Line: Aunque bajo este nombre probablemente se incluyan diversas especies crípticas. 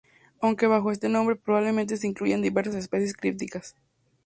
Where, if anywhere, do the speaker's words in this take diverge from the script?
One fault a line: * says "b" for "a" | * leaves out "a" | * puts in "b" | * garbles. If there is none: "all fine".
all fine